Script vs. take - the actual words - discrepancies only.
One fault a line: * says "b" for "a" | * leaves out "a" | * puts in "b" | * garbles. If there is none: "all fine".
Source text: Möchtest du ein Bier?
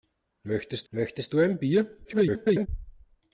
* puts in "möchtest"
* garbles